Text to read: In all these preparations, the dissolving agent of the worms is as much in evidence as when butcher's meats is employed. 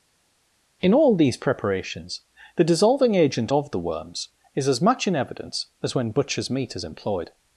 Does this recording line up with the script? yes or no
no